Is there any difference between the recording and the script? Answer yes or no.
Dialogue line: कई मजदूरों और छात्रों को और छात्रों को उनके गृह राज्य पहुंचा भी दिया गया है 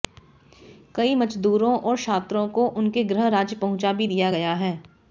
yes